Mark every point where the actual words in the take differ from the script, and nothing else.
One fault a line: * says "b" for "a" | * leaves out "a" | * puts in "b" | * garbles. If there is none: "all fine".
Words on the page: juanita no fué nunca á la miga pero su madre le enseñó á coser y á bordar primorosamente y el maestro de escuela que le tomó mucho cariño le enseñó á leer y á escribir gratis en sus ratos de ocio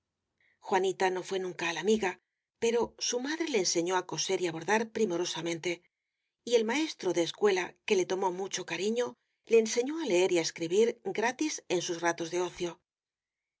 all fine